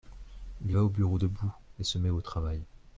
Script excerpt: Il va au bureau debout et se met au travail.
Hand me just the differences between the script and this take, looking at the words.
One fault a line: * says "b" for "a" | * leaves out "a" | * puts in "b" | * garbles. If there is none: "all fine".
all fine